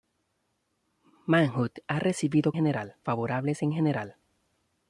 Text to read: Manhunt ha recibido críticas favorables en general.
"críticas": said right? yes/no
no